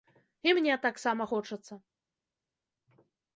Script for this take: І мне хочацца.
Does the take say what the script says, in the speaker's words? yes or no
no